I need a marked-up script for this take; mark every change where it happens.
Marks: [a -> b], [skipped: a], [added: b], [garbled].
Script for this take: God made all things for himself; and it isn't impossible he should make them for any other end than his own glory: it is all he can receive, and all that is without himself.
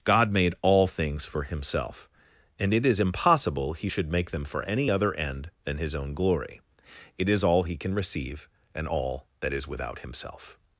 God made all things for himself; and it [isn't -> is] impossible he should make them for any other end than his own glory: it is all he can receive, and all that is without himself.